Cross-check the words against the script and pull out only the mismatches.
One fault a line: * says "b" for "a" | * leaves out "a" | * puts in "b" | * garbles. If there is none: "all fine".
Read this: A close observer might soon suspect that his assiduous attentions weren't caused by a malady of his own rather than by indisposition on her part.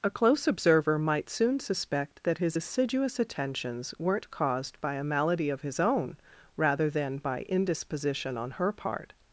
all fine